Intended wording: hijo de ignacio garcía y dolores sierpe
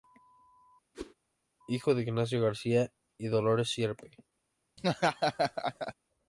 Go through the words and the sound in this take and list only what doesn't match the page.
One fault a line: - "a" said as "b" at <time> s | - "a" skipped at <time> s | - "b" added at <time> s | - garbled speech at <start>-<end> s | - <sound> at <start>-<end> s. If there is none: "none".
- whoosh at 0.9-1.1 s
- laugh at 4.8-5.9 s